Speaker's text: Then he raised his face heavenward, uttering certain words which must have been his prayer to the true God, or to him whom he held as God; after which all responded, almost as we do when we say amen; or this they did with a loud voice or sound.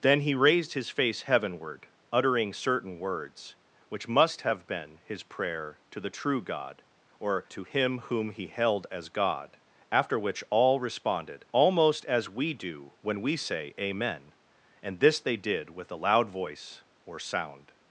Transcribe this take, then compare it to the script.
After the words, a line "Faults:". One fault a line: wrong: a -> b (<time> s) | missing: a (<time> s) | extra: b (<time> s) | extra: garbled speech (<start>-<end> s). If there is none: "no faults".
Then he raised his face heavenward, uttering certain words which must have been his prayer to the true God, or to him whom he held as God; after which all responded, almost as we do when we say amen; and this they did with a loud voice or sound.
Faults:
wrong: or -> and (14.8 s)